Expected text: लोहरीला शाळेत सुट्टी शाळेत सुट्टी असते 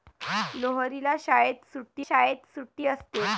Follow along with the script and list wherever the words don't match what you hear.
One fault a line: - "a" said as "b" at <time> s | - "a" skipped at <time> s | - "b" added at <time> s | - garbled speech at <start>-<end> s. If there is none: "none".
none